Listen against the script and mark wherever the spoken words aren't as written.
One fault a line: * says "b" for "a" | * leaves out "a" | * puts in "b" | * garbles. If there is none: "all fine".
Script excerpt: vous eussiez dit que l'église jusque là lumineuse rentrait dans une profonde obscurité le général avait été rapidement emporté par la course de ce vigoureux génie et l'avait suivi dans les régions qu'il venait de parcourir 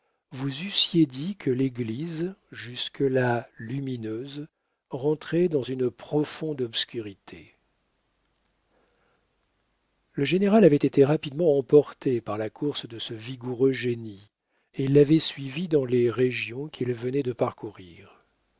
all fine